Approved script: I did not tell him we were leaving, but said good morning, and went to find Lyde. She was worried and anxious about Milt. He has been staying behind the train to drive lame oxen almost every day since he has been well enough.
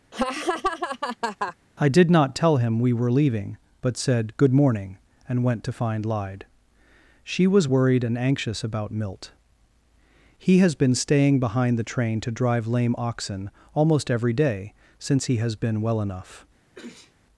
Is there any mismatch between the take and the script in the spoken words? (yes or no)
no